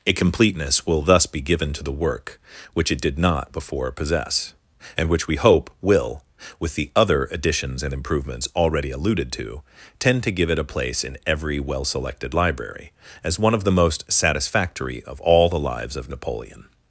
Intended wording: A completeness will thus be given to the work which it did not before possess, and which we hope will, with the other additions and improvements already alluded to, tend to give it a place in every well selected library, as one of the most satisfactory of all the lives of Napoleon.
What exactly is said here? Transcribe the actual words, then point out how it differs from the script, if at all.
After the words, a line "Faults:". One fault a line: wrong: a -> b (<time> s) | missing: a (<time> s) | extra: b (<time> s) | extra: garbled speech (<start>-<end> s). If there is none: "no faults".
A completeness will thus be given to the work which it did not before possess, and which we hope will, with the other additions and improvements already alluded to, tend to give it a place in every well selected library, as one of the most satisfactory of all the lives of Napoleon.
Faults:
no faults